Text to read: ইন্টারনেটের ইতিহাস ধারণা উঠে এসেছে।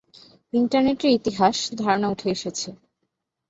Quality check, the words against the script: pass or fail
pass